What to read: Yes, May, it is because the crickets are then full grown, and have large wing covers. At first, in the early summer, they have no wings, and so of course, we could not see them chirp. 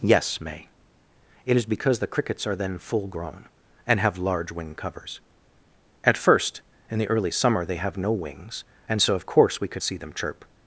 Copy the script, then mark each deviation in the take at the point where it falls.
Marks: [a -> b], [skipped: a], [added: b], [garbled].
Yes, May, it is because the crickets are then full grown, and have large wing covers. At first, in the early summer, they have no wings, and so of course, we could [skipped: not] see them chirp.